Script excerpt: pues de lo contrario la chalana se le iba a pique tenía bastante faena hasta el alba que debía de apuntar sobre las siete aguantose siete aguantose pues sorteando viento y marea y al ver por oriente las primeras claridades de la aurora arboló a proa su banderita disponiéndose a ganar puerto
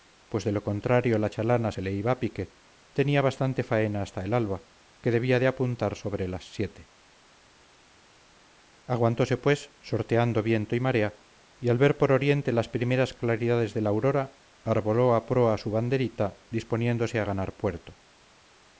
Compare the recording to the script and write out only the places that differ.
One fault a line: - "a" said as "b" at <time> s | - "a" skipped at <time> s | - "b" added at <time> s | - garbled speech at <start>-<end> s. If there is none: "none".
- "siete aguantose" skipped at 9.4 s